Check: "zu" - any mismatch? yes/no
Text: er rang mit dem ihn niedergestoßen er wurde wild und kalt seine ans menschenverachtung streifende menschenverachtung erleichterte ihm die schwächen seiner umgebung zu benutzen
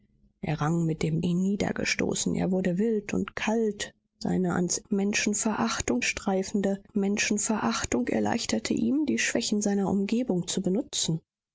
no